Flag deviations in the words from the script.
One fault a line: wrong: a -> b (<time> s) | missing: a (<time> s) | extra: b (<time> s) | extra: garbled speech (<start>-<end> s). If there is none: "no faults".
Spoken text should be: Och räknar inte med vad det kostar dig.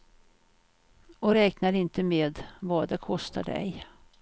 no faults